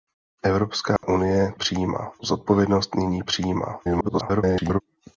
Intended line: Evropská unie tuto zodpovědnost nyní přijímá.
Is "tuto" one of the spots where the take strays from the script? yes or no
yes